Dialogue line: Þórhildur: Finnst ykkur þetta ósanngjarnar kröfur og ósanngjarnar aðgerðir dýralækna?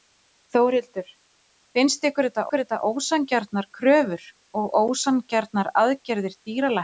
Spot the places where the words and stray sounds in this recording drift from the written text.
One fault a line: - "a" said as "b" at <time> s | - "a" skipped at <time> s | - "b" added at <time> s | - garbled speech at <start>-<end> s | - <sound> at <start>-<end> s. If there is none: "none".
- "ykkur þetta" added at 2.5 s